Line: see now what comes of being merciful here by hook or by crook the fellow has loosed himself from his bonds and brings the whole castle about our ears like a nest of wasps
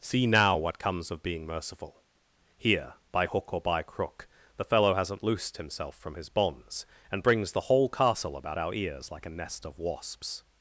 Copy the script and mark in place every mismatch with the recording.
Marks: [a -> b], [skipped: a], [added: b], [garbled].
see now what comes of being merciful here by hook or by crook the fellow [has -> hasn't] loosed himself from his bonds and brings the whole castle about our ears like a nest of wasps